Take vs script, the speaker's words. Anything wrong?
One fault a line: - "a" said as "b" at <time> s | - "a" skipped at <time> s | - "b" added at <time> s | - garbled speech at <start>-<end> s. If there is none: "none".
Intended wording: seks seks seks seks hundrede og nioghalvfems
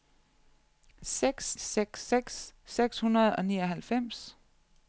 none